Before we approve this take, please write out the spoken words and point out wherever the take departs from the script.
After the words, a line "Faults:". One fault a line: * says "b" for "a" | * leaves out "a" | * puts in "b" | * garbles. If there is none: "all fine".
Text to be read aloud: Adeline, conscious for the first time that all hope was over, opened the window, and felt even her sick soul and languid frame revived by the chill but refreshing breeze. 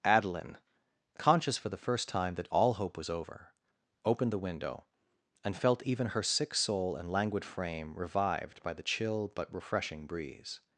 Adeline, conscious for the first time that all hope was over, opened the window, and felt even her sick soul and languid frame revived by the chill but refreshing breeze.
Faults:
all fine